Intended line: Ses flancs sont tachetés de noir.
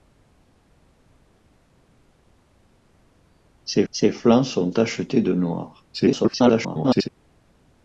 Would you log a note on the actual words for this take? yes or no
yes